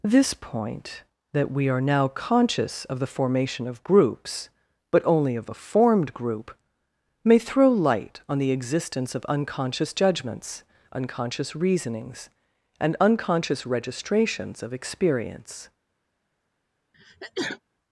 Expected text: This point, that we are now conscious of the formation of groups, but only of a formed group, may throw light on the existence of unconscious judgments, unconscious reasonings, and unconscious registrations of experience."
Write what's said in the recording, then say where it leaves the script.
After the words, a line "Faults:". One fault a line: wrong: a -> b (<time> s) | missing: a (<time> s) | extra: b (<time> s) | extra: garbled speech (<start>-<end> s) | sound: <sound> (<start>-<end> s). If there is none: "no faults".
This point, that we are now conscious of the formation of groups, but only of a formed group, may throw light on the existence of unconscious judgments, unconscious reasonings, and unconscious registrations of experience."
Faults:
sound: sneeze (16.9-17.6 s)